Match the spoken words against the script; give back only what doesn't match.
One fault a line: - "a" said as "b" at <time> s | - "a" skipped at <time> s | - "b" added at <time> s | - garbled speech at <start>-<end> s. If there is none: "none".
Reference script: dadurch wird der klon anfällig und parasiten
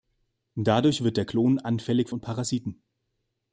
none